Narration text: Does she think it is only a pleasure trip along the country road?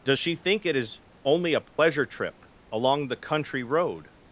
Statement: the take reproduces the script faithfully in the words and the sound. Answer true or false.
false